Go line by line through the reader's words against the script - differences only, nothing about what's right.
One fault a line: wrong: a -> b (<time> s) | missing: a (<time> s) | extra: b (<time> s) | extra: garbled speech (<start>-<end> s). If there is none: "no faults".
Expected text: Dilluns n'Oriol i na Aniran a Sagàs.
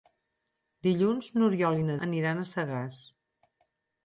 no faults